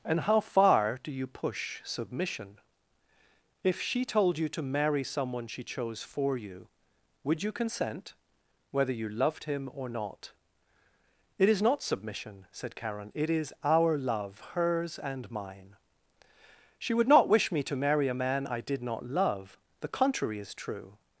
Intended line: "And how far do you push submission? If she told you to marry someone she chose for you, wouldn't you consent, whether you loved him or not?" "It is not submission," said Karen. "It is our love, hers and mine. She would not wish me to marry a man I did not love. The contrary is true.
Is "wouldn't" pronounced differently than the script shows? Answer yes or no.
yes